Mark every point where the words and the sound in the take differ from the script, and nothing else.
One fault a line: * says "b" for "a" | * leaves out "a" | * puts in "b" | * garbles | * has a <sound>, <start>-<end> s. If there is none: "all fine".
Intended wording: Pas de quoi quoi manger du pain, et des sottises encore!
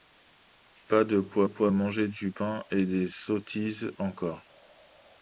all fine